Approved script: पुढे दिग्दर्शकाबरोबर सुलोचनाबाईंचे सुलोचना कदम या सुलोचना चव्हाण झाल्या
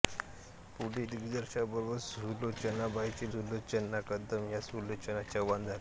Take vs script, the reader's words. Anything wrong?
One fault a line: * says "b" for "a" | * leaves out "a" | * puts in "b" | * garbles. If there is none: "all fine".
all fine